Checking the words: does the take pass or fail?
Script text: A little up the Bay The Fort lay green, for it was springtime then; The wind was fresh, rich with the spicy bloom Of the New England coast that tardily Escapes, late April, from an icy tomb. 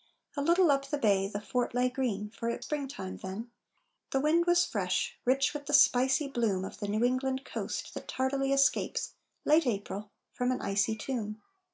fail